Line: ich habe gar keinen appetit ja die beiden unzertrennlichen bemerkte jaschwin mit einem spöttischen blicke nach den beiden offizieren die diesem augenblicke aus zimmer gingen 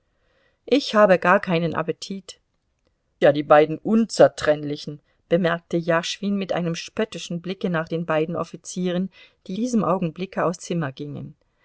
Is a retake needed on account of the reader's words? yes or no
no